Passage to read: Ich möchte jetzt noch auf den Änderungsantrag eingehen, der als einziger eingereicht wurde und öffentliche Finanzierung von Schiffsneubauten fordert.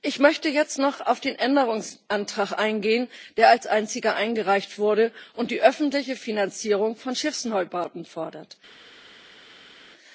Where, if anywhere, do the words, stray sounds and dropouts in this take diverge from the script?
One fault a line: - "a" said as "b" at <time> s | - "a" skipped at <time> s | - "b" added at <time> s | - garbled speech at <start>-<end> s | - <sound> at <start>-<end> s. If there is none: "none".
- "die" added at 5.5 s